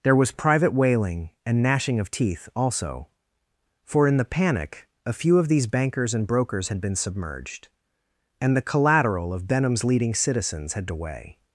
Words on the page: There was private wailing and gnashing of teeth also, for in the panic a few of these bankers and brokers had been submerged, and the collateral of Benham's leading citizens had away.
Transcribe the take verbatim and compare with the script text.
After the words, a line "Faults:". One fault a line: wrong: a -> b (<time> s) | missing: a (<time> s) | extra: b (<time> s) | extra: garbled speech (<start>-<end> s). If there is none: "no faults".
There was private wailing and gnashing of teeth also, for in the panic a few of these bankers and brokers had been submerged, and the collateral of Benham's leading citizens had away.
Faults:
no faults